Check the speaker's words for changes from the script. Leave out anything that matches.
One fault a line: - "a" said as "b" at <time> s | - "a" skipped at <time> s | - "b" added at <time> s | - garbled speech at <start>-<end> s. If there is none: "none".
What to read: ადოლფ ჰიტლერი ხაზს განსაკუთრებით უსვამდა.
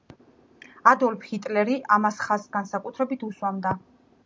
- "ამას" added at 2.0 s